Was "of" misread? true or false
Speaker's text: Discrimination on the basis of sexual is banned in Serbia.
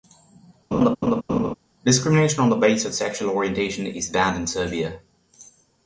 false